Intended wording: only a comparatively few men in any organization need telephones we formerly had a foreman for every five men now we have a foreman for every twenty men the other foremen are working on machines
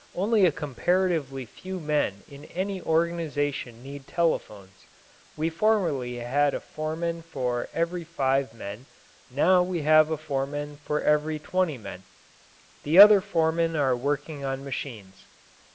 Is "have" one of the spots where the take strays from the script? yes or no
no